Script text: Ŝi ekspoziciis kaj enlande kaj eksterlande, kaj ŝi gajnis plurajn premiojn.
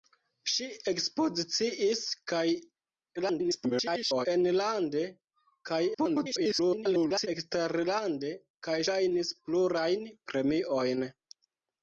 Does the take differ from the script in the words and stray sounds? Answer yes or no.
yes